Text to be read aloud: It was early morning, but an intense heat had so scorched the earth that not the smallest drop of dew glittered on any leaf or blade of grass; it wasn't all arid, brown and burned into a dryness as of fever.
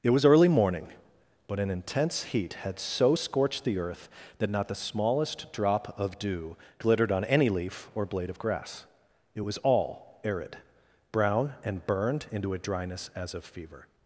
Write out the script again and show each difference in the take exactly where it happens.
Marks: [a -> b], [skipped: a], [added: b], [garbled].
It was early morning, but an intense heat had so scorched the earth that not the smallest drop of dew glittered on any leaf or blade of grass; it [wasn't -> was] all arid, brown and burned into a dryness as of fever.